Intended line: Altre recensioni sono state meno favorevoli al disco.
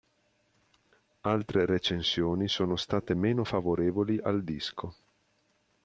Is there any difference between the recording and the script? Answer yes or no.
no